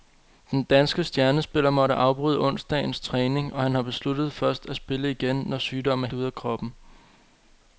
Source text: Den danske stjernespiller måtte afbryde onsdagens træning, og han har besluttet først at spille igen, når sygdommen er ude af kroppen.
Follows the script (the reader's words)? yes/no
yes